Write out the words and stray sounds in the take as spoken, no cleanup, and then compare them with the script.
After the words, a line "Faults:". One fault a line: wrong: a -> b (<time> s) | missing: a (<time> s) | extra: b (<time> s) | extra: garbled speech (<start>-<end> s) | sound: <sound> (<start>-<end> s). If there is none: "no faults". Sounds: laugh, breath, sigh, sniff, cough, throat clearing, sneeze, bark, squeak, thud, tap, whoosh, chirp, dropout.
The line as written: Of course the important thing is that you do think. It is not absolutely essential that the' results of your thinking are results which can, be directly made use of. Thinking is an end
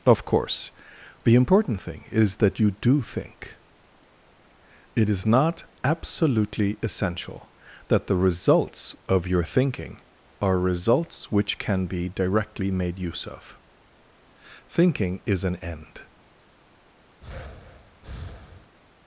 Of course the important thing is that you do think. It is not absolutely essential that the' results of your thinking are results which can, be directly made use of. Thinking is an end
Faults:
sound: breath (17.2-18.7 s)